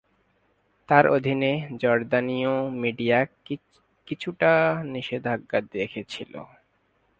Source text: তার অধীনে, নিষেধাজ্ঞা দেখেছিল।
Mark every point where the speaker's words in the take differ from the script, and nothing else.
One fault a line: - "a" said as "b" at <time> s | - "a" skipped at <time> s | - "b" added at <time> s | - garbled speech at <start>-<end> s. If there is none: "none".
- "জর্দানীয় মিডিয়া কিছুটা" added at 1.8 s